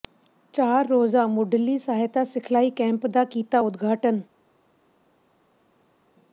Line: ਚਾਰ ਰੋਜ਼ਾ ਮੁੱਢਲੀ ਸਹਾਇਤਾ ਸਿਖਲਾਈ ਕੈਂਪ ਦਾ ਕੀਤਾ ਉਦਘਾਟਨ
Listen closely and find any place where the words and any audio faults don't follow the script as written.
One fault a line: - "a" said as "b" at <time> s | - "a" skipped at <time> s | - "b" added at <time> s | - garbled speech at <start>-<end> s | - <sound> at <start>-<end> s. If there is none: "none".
none